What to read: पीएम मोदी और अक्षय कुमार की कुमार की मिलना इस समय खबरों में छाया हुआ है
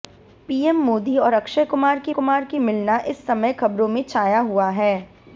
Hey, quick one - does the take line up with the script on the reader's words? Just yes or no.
yes